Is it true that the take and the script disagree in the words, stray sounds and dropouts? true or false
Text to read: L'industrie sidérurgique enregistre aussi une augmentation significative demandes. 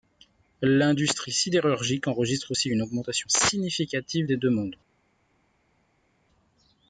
true